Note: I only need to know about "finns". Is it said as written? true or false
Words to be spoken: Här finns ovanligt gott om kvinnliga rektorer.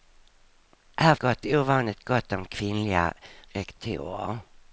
false